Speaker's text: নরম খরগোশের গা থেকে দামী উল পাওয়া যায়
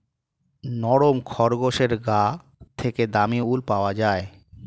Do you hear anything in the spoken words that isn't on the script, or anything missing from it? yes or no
no